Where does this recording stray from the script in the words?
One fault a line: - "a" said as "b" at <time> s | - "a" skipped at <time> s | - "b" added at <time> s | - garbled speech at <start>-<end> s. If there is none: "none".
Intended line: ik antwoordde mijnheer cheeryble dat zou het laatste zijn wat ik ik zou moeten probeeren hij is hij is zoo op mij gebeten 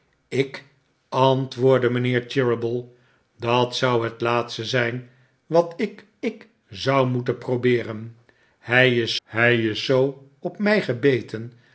none